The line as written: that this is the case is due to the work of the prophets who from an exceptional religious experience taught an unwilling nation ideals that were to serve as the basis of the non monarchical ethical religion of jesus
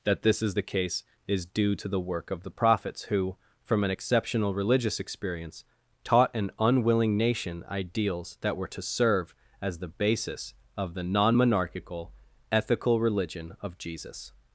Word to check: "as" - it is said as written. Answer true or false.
true